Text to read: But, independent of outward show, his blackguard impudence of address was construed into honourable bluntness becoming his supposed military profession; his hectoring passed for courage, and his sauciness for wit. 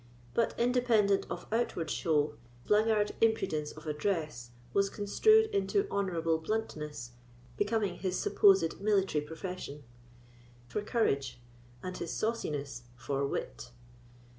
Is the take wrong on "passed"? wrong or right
wrong